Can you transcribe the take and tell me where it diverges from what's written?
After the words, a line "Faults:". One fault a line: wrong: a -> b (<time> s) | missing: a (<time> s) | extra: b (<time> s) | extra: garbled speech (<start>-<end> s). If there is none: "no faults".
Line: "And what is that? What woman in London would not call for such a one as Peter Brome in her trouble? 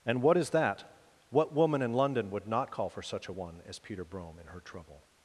"And what is that? What woman in London would not call for such a one as Peter Brome in her trouble?
Faults:
no faults